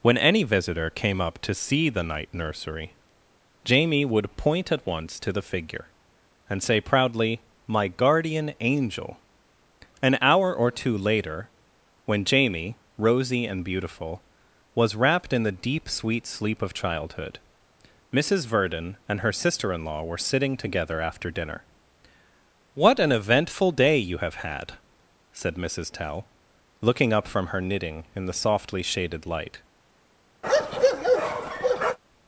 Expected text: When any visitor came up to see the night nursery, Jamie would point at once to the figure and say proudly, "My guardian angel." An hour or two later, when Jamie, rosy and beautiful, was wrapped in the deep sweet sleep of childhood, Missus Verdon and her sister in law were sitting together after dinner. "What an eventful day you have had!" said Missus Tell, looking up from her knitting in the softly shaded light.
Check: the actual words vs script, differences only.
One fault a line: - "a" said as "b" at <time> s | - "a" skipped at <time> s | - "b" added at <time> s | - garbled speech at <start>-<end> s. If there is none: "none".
none